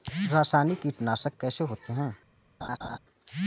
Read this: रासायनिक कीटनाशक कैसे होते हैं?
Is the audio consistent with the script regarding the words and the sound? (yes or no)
no